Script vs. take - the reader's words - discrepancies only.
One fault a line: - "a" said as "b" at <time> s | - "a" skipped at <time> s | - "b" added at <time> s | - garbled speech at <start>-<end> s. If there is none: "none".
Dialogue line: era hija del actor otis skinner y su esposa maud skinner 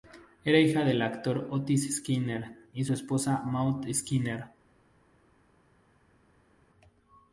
none